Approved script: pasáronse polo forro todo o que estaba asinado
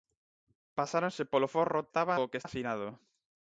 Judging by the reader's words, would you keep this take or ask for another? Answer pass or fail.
fail